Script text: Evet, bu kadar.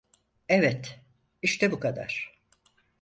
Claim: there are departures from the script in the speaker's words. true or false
true